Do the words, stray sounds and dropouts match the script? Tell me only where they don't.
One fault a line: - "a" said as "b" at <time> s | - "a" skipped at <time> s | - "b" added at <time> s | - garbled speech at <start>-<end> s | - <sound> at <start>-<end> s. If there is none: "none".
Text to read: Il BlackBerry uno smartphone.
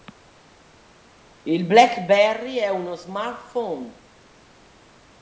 - "è" added at 2.5 s